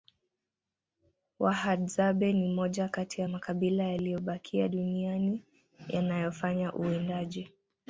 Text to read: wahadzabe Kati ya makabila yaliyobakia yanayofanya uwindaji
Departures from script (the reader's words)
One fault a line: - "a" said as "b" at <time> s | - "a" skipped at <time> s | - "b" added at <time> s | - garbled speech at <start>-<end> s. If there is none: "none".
- "ni moja" added at 2.3 s
- "duniani" added at 4.7 s